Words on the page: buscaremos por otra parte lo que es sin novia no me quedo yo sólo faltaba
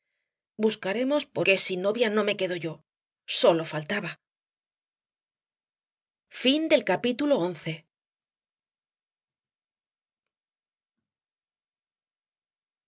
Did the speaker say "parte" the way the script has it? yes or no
no